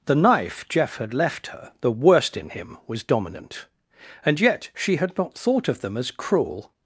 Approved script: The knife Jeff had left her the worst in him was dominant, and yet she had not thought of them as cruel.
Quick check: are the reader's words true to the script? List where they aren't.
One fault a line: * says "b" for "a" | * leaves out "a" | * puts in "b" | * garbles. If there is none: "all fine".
all fine